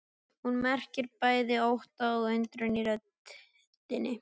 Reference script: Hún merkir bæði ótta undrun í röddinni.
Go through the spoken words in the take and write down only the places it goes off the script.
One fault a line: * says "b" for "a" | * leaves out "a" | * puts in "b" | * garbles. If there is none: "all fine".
* puts in "og"